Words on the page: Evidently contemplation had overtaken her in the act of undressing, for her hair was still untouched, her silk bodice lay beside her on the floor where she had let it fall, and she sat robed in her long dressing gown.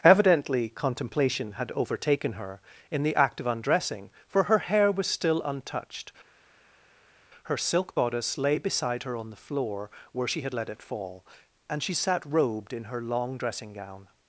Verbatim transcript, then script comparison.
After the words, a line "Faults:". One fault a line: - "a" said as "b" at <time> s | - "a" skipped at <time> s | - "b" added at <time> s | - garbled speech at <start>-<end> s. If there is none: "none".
Evidently contemplation had overtaken her in the act of undressing, for her hair was still untouched, her silk bodice lay beside her on the floor where she had let it fall, and she sat robed in her long dressing gown.
Faults:
none